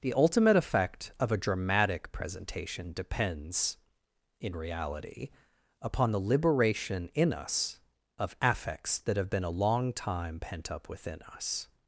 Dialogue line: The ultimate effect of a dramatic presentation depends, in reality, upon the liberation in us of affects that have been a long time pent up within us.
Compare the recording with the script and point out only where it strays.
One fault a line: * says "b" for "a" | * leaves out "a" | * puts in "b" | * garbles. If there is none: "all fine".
all fine